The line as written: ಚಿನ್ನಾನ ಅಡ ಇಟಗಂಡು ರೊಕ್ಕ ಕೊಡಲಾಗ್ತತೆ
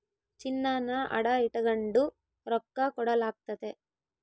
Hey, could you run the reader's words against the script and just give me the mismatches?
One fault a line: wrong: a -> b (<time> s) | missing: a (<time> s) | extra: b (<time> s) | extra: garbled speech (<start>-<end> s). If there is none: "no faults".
no faults